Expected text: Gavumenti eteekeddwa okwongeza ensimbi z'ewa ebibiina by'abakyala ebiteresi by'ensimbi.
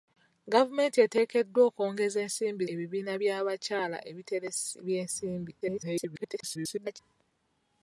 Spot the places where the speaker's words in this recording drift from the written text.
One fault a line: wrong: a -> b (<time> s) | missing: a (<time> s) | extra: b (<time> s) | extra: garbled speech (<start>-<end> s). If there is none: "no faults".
missing: z'ewa (2.6 s)
extra: garbled speech (5.6-7.0 s)